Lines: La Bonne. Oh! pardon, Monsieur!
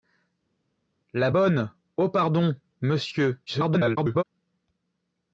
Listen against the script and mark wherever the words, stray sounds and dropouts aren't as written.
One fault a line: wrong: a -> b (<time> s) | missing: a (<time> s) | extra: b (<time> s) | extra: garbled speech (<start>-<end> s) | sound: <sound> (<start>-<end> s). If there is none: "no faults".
extra: garbled speech (3.5-4.2 s)